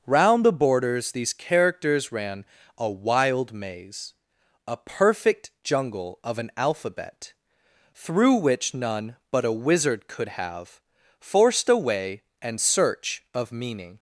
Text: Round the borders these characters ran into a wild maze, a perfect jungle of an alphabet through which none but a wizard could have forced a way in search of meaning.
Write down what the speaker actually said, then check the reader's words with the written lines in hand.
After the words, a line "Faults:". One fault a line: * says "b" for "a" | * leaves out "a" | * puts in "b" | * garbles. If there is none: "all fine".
Round the borders these characters ran a wild maze, a perfect jungle of an alphabet through which none but a wizard could have forced a way and search of meaning.
Faults:
* leaves out "into"
* says "and" for "in"